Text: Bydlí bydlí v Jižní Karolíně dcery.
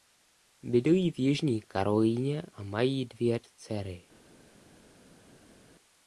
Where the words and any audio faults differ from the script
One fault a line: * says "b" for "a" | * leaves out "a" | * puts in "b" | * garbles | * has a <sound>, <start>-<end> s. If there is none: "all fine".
* leaves out "bydlí"
* puts in "a mají dvě"